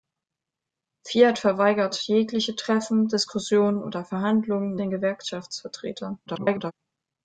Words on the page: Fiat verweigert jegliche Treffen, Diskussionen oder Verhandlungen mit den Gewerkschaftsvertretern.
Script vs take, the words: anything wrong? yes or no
yes